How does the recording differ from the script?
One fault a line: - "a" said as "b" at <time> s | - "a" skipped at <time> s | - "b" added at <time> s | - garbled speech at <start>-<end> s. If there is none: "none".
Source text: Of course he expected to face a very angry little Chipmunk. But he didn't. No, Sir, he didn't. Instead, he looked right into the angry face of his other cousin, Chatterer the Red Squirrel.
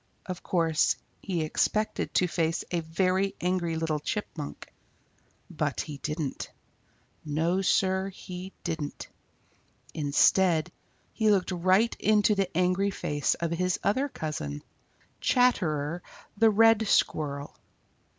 none